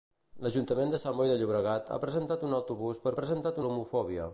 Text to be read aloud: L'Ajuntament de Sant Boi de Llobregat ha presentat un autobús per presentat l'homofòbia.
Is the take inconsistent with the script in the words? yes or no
no